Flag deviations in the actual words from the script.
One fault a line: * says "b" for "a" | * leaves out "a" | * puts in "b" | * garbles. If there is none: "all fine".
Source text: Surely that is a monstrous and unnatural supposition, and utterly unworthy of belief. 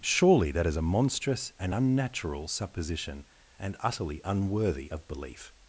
all fine